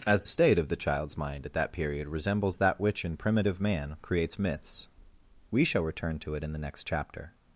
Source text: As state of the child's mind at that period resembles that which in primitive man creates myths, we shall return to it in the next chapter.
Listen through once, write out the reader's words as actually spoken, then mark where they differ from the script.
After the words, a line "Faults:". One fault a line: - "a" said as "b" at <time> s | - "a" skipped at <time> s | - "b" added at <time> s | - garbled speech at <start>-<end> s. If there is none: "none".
As state of the child's mind at that period resembles that which in primitive man creates myths, we shall return to it in the next chapter.
Faults:
none